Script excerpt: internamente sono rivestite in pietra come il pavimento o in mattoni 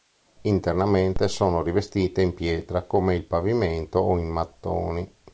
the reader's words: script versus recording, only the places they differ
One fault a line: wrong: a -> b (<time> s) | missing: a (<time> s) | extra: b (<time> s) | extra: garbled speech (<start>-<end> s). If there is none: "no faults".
no faults